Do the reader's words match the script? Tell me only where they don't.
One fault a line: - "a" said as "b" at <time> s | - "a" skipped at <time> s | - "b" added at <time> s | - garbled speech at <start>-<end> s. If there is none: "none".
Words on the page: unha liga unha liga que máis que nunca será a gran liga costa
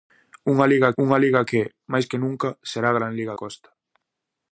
none